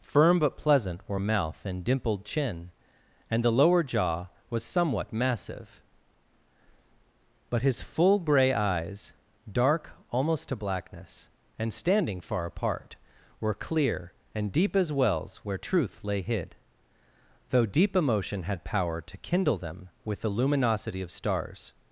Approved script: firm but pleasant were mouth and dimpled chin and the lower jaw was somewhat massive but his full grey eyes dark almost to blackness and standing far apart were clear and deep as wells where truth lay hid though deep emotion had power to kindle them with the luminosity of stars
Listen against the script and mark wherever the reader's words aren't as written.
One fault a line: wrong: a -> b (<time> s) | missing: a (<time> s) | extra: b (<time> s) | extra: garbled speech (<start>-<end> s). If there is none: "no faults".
no faults